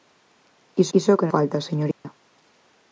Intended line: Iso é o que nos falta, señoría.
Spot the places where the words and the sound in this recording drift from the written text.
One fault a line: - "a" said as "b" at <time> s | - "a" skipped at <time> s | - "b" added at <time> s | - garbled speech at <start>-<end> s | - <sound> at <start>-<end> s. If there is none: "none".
- "iso" added at 1.0 s
- "nos" skipped at 1.3 s
- dropout at 1.9-2.0 s